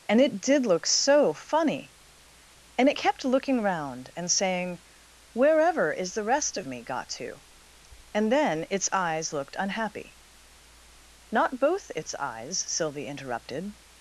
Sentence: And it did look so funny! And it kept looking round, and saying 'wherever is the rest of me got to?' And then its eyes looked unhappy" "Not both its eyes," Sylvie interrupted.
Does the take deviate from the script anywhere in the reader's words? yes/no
no